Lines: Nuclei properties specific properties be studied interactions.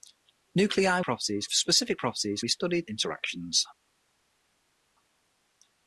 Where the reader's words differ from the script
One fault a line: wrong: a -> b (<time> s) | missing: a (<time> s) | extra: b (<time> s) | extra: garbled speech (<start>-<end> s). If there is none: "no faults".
no faults